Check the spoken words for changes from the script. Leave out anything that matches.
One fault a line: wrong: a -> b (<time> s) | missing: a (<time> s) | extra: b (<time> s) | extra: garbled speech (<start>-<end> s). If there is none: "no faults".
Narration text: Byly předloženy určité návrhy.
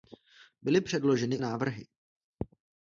missing: určité (1.4 s)